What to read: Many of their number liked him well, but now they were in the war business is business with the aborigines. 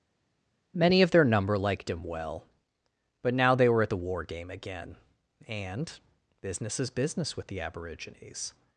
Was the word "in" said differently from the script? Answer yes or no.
yes